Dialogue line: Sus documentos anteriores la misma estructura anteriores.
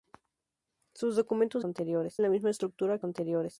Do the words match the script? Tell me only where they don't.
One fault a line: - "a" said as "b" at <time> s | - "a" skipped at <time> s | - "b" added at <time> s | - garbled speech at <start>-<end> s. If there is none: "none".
none